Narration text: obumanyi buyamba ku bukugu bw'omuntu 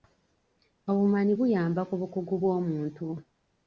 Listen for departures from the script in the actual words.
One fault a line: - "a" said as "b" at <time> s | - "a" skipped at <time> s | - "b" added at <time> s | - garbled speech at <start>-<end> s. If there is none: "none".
none